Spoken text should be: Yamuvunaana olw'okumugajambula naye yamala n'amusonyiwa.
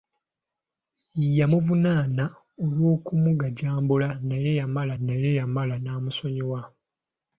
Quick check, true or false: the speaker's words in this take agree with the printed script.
false